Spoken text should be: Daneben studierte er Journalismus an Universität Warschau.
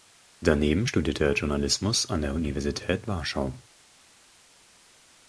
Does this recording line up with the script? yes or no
no